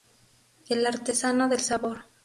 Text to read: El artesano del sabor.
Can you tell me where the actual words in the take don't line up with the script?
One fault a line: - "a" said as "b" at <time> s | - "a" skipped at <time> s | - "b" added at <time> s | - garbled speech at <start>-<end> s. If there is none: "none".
none